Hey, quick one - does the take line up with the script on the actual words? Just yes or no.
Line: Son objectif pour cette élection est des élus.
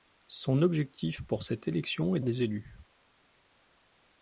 yes